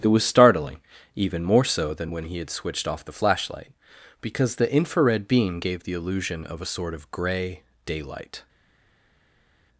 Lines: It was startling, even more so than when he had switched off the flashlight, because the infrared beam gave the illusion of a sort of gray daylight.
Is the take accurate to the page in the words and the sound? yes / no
yes